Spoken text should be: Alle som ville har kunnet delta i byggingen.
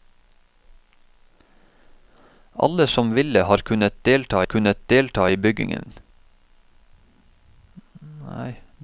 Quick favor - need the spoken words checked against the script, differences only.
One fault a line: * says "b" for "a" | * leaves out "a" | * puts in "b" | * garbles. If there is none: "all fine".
* puts in "kunnet delta"